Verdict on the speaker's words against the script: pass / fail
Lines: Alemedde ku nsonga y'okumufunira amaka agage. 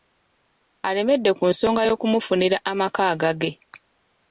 pass